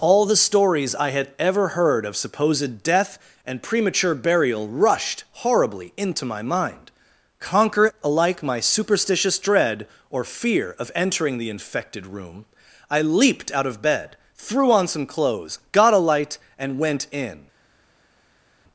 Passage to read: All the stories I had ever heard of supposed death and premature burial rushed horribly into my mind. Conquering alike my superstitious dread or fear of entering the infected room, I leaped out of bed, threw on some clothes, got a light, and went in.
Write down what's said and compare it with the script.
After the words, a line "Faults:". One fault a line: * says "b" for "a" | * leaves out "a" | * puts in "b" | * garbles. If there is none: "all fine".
All the stories I had ever heard of supposed death and premature burial rushed horribly into my mind. Conquer alike my superstitious dread or fear of entering the infected room, I leaped out of bed, threw on some clothes, got a light, and went in.
Faults:
* says "Conquer" for "Conquering"